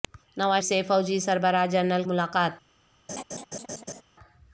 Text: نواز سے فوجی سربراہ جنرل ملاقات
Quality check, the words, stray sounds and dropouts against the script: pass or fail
fail